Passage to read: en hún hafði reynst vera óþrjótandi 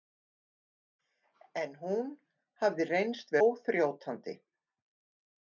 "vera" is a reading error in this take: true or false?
true